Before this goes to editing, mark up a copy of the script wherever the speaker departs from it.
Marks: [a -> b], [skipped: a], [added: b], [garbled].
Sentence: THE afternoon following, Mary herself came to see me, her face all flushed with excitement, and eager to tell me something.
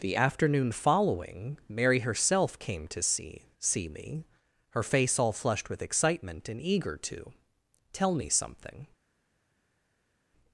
THE afternoon following, Mary herself came to see [added: see] me, her face all flushed with excitement, and eager to tell me something.